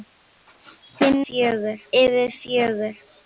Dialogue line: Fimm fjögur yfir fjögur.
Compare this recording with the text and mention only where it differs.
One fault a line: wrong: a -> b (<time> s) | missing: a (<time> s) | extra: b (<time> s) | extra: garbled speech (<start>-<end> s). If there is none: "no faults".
no faults